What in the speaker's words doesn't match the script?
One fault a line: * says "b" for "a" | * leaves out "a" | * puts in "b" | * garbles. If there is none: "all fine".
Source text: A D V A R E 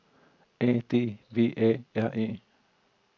all fine